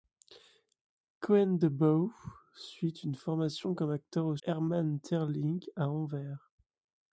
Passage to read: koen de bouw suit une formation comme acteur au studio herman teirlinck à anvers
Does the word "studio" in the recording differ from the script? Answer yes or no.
yes